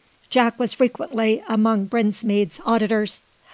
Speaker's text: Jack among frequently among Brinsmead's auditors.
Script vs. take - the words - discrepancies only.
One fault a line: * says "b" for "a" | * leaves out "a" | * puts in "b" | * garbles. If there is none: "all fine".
* says "was" for "among"